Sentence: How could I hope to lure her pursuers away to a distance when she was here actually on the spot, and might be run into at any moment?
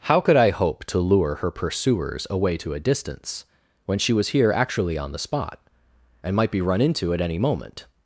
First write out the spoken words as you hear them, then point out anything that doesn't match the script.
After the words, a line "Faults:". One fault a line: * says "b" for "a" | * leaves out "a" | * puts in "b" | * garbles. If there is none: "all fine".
How could I hope to lure her pursuers away to a distance when she was here actually on the spot, and might be run into at any moment?
Faults:
all fine